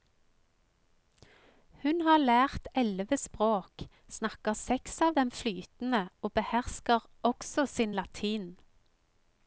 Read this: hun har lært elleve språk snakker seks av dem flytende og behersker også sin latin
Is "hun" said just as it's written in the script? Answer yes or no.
yes